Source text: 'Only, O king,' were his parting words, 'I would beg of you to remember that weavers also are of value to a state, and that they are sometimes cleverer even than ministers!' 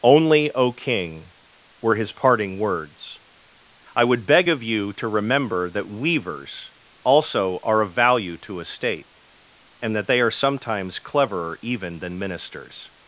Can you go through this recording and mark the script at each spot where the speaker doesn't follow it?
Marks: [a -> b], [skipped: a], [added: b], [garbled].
'Only, O king,' were his parting words, 'I would beg of you to remember that weavers also are of value to a state, and that they are sometimes cleverer even than ministers!'